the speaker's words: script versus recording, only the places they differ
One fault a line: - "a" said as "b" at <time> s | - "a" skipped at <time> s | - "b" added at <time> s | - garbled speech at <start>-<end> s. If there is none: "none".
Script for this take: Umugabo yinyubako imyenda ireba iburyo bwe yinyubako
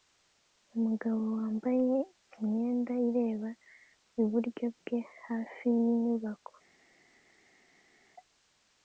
- "yinyubako" said as "wambaye" at 1.4 s
- "hafi" added at 5.2 s